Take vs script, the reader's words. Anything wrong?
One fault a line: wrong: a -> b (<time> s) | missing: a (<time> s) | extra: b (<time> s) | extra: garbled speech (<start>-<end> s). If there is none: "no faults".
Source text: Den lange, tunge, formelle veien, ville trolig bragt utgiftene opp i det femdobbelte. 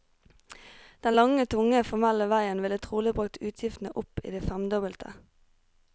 no faults